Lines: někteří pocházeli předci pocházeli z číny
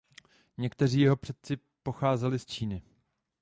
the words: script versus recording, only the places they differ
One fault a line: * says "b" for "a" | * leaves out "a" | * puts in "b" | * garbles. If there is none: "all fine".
* says "jeho" for "pocházeli"